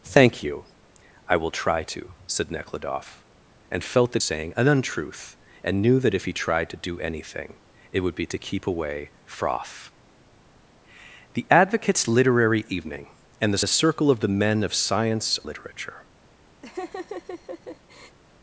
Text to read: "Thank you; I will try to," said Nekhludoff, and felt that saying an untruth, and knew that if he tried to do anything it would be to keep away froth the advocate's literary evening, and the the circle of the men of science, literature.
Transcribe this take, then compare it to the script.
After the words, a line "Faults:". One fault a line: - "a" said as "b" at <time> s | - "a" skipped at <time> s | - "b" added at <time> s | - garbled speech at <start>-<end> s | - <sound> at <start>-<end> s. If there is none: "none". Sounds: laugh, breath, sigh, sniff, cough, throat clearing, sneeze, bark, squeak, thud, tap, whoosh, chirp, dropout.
"Thank you; I will try to," said Nekhludoff, and felt that saying an untruth, and knew that if he tried to do anything it would be to keep away froth the advocate's literary evening, and the the circle of the men of science, literature.
Faults:
- laugh at 16.6-18.2 s